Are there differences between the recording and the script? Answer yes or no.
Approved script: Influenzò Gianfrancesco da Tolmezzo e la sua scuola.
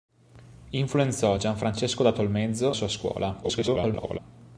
yes